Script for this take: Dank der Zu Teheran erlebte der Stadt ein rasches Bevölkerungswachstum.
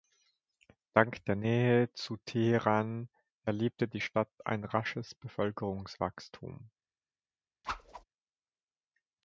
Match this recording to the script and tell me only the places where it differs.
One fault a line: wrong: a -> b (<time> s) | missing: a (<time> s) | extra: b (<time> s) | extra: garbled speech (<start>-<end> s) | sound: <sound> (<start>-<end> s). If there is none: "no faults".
extra: Nähe (1.4 s)
wrong: der -> die (3.9 s)
sound: whoosh (7.6-8.0 s)